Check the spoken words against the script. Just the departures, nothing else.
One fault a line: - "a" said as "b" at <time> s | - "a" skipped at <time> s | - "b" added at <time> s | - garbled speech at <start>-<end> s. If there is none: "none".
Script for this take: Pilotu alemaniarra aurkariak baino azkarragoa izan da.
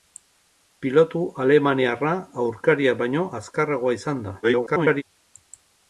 - garbled speech at 4.4-5.0 s